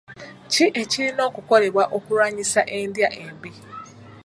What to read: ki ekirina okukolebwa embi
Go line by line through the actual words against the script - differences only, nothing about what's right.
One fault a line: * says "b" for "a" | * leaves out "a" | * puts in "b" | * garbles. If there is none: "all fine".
* puts in "okulwanyisa endya"